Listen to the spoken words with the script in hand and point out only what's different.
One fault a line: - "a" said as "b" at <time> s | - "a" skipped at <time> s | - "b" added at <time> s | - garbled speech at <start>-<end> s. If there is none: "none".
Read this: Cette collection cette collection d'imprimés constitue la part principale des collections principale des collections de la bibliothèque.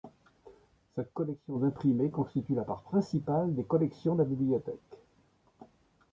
- "cette collection" skipped at 1.6 s
- "principale des collections" skipped at 4.2 s